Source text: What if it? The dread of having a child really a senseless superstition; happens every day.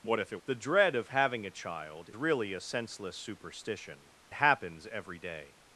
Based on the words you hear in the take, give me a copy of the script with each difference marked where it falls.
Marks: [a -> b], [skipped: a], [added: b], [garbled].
What if it? The dread of having a child really a senseless superstition; happens every day.